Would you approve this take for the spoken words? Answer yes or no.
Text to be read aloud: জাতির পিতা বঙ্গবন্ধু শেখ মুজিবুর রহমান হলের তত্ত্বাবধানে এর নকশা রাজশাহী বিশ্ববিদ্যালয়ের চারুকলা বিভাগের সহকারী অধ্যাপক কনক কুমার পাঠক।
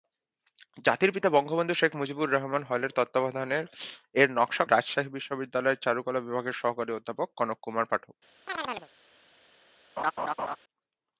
yes